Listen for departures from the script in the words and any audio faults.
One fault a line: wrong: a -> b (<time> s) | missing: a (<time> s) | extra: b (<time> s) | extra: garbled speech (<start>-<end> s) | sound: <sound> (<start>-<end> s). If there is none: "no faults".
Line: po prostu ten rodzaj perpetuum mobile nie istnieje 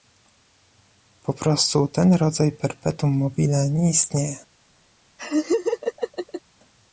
sound: laugh (5.2-6.4 s)